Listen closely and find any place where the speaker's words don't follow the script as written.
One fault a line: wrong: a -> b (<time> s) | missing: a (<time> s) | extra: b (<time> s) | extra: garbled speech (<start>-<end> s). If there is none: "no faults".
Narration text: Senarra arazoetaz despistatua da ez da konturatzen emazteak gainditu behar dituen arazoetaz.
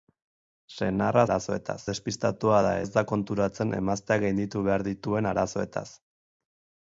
no faults